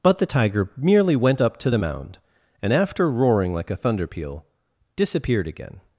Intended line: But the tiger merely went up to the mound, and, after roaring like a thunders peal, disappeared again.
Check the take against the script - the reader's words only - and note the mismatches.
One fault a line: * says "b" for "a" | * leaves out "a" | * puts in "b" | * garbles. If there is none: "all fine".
* says "thunder" for "thunders"